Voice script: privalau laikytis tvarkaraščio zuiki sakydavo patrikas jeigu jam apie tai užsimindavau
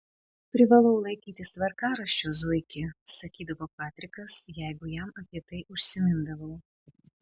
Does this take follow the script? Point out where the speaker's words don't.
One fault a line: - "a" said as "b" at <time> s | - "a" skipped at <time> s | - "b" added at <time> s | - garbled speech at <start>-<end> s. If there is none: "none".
none